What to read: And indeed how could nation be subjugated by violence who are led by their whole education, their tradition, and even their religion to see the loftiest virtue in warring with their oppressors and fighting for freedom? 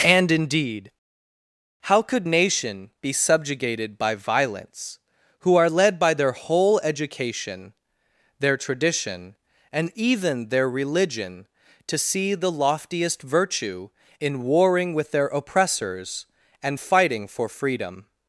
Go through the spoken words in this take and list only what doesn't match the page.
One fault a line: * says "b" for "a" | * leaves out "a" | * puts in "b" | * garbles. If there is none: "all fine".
all fine